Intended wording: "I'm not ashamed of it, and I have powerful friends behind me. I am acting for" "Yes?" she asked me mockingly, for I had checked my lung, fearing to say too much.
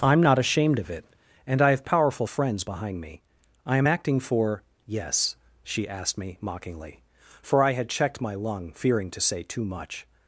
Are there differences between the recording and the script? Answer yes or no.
no